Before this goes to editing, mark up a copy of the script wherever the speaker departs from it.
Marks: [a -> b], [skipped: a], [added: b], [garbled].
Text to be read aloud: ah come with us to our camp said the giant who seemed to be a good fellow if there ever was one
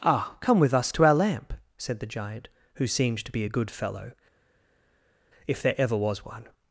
ah come with us to our [camp -> lamp] said the giant who seemed to be a good fellow if there ever was one